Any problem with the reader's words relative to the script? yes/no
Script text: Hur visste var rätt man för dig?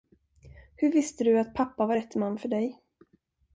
yes